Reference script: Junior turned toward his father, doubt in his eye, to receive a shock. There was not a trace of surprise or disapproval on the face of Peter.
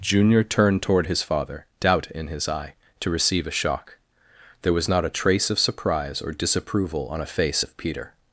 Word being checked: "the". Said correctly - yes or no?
no